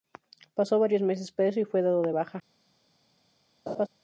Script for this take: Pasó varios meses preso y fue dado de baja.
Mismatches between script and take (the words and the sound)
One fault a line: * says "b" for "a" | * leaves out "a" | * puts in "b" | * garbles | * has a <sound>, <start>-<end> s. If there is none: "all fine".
* has a laugh, 3.7-3.9 s